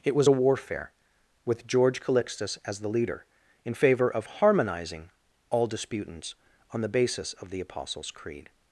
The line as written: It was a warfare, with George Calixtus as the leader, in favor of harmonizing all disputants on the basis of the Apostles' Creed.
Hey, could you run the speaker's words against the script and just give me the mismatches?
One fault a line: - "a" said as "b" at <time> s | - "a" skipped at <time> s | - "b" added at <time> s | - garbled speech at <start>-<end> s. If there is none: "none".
none